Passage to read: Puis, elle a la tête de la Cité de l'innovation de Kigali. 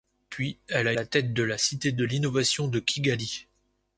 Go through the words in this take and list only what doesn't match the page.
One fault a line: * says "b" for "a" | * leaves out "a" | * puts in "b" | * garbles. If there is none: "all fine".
all fine